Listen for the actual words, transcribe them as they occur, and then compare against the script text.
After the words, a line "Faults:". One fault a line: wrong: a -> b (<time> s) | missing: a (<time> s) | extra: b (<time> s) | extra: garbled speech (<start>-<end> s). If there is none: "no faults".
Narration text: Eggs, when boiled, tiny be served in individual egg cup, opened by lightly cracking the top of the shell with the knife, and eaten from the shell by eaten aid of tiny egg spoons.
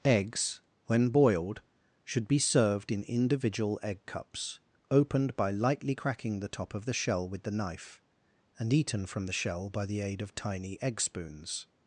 Eggs, when boiled, should be served in individual egg cups, opened by lightly cracking the top of the shell with the knife, and eaten from the shell by the aid of tiny egg spoons.
Faults:
wrong: tiny -> should (2.0 s)
wrong: cup -> cups (4.1 s)
wrong: eaten -> the (9.9 s)